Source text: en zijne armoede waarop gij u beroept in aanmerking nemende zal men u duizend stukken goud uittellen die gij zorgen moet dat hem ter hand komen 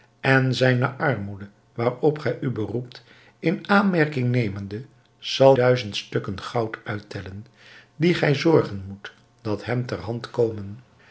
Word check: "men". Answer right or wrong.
wrong